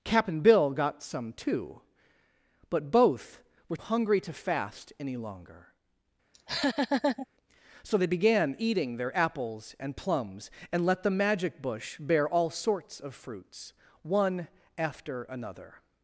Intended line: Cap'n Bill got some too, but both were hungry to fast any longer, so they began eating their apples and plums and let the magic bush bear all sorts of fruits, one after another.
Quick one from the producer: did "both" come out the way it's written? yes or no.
yes